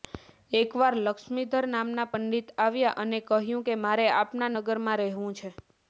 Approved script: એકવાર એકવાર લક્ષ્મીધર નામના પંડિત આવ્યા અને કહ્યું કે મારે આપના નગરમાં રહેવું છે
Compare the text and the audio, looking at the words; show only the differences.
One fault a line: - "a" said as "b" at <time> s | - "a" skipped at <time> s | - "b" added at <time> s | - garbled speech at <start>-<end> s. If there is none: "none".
- "એકવાર" skipped at 0.9 s